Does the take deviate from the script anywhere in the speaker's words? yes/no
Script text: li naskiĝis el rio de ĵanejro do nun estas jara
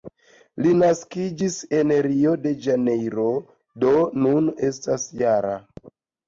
yes